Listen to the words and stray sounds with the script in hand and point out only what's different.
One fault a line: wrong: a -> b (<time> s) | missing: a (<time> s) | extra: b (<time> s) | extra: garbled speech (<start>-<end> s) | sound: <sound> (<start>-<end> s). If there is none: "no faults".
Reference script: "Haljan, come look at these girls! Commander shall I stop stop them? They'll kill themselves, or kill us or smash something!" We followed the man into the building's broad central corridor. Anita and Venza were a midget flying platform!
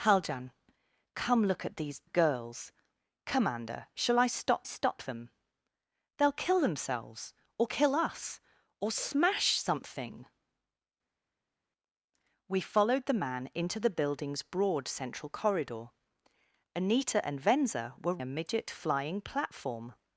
no faults